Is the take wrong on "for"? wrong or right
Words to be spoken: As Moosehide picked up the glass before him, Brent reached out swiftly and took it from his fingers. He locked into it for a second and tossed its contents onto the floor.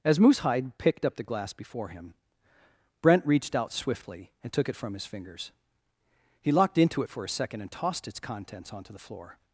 right